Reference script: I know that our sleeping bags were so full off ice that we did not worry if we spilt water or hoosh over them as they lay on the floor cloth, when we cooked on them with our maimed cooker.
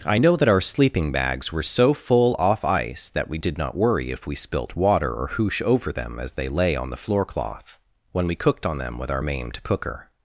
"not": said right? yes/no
yes